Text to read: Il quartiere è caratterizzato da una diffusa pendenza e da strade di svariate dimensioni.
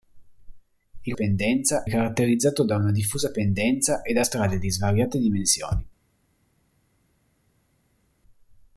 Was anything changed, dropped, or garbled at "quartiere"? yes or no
yes